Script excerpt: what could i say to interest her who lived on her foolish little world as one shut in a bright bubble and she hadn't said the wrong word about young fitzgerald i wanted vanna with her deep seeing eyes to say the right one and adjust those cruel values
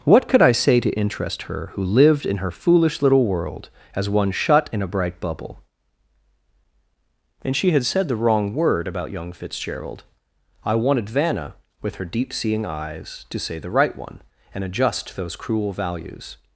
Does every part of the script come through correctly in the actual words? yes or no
no